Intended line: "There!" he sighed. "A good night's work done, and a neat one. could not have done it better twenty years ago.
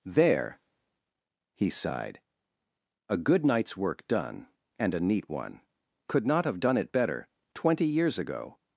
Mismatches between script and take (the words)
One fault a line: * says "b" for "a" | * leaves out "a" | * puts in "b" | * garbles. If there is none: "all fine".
all fine